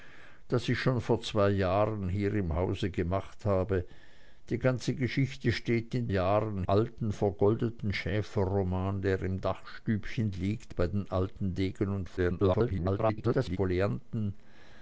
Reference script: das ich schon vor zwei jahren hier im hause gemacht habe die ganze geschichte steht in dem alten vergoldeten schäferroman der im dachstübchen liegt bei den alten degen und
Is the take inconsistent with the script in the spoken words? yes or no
yes